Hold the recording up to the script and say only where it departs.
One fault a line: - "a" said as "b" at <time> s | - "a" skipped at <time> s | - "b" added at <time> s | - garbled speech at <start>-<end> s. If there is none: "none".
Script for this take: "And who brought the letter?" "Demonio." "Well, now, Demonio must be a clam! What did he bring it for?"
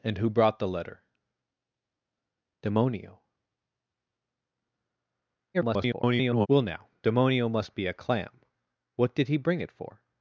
- garbled speech at 5.5-6.5 s